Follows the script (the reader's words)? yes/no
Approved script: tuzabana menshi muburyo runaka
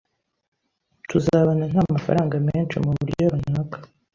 no